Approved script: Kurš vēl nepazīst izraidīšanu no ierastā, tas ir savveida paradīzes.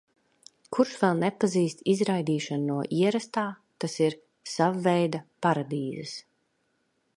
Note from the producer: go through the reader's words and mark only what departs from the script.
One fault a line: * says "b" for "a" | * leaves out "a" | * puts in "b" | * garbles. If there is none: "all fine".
all fine